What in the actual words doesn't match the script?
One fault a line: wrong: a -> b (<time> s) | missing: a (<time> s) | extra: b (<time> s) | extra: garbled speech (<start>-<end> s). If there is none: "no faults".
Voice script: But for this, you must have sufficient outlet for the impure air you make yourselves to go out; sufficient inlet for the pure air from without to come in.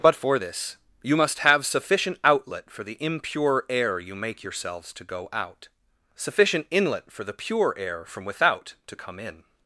no faults